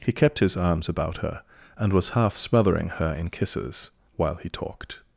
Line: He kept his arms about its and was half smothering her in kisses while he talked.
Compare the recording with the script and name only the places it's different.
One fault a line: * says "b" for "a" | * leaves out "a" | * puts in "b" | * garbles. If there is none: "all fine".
* says "her" for "its"